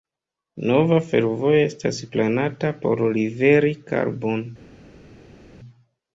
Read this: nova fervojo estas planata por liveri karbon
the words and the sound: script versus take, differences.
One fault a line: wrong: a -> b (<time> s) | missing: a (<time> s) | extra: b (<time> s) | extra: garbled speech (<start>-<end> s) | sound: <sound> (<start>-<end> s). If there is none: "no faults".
no faults